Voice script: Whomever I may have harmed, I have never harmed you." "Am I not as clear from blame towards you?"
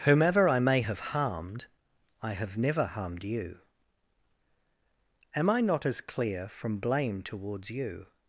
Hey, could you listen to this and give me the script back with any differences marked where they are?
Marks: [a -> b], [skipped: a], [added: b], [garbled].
Whomever I may have harmed, I have never harmed you." "Am I not as clear from blame towards you?"